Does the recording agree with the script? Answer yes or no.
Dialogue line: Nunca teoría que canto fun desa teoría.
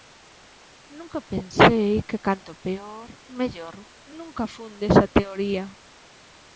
no